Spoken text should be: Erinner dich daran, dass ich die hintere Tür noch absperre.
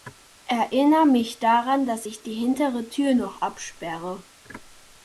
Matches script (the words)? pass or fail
fail